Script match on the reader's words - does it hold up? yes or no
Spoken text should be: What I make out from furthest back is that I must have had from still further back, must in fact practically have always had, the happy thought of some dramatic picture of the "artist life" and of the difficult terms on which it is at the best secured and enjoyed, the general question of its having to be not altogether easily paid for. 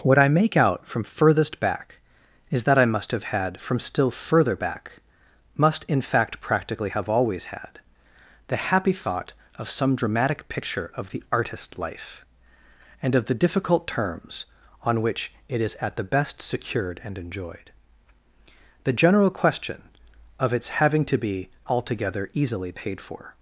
no